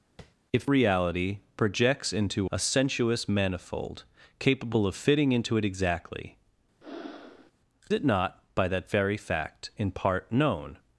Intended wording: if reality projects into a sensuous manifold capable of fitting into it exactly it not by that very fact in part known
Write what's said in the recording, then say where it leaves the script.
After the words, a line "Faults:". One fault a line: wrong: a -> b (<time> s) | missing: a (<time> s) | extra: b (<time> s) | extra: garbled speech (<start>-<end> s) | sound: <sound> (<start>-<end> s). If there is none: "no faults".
if reality projects into a sensuous manifold capable of fitting into it exactly it not by that very fact in part known
Faults:
sound: tap (0.2-0.3 s)
sound: breath (6.8-7.5 s)